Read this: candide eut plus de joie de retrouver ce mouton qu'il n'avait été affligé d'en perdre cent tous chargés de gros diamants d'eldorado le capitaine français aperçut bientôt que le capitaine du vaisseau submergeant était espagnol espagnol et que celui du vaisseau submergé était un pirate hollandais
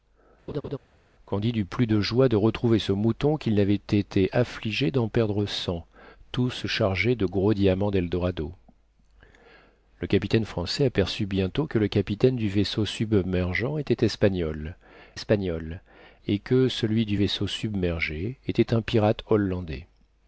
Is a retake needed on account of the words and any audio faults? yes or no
yes